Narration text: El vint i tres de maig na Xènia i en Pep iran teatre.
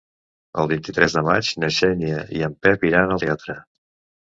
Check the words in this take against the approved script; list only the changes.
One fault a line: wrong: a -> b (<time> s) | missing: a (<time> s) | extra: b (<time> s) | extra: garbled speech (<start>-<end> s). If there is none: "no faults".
no faults